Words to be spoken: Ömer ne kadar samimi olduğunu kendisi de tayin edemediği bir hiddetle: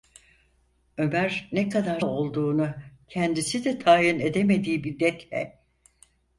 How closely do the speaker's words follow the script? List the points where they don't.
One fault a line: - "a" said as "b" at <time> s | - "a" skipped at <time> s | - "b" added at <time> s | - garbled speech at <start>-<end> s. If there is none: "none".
- "samimi" skipped at 2.0 s
- "bir" skipped at 4.8 s